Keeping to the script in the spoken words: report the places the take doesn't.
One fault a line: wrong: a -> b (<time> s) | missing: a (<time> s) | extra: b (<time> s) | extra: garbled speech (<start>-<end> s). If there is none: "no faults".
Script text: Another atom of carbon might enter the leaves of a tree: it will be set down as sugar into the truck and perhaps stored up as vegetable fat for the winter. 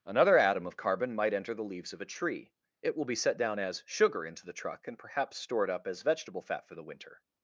no faults